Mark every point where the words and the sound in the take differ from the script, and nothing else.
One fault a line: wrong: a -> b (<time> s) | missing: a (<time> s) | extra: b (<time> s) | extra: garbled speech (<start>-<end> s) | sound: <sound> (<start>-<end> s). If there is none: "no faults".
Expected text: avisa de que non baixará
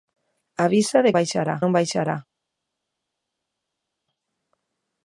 wrong: que -> baixará (1.2 s)